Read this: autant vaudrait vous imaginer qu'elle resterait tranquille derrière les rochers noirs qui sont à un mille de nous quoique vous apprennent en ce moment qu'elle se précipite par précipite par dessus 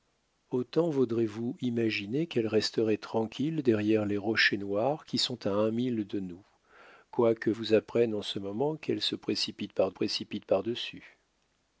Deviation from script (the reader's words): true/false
false